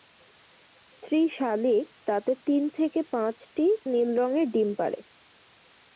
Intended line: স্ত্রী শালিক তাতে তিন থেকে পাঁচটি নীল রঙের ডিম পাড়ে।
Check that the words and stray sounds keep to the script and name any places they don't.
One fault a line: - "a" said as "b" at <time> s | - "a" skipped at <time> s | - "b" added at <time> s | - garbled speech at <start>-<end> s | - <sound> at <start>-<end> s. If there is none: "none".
none